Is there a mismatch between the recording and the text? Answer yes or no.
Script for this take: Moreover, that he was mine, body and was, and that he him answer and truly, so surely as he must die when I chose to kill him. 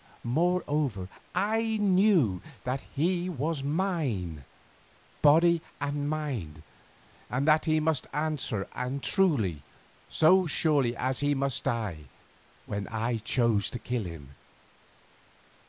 yes